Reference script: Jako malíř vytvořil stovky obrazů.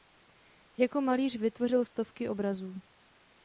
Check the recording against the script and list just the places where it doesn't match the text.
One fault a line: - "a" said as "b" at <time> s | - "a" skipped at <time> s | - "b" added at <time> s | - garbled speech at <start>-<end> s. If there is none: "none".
none